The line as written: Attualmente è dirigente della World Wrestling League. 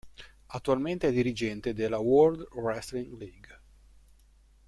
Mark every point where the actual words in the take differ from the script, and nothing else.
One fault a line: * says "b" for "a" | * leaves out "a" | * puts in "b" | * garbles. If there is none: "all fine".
all fine